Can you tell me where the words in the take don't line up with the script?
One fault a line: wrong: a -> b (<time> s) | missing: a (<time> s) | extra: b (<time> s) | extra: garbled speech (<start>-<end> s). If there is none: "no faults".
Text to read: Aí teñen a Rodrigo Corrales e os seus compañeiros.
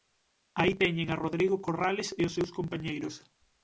no faults